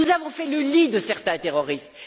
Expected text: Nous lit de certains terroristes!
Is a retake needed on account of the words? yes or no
yes